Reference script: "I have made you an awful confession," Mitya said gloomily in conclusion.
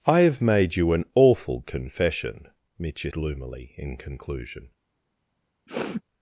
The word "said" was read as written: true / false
false